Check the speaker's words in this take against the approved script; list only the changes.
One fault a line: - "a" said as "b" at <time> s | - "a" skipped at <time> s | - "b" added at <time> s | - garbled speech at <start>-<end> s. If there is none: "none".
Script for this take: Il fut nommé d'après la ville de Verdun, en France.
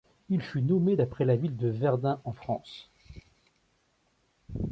none